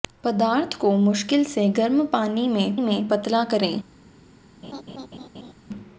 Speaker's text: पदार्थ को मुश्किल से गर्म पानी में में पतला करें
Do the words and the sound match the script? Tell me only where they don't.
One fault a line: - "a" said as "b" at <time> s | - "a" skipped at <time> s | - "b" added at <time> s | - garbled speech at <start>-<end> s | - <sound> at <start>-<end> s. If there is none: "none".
- laugh at 4.6-5.5 s